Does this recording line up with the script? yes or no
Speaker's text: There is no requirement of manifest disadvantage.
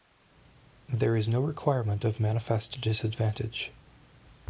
yes